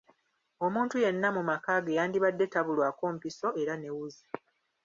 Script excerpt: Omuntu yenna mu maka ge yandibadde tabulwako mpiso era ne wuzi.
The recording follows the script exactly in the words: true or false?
true